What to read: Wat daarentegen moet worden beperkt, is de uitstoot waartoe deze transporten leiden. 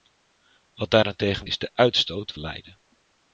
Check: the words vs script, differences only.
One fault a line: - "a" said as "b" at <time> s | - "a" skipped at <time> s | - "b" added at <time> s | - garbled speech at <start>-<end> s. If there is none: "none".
- "moet worden beperkt" skipped at 1.5 s
- "waartoe deze transporten" skipped at 2.3 s